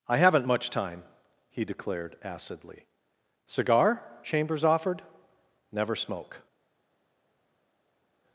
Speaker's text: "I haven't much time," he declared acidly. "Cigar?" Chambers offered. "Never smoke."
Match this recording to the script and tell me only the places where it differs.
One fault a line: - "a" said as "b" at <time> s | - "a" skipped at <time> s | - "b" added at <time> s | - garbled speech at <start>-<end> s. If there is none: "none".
none